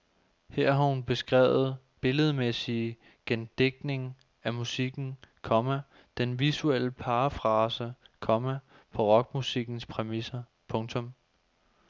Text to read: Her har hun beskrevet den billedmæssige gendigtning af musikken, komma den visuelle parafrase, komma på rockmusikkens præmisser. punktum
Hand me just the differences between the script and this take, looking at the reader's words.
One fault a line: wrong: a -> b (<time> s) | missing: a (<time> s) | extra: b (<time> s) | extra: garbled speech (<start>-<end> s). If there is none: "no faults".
missing: den (1.8 s)